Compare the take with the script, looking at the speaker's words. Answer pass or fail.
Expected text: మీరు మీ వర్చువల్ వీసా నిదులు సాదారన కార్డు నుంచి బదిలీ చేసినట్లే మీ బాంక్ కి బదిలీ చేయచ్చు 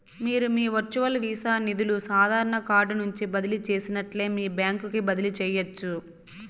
pass